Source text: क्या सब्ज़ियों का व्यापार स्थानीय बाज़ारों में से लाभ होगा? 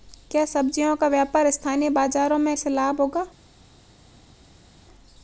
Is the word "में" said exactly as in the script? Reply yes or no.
yes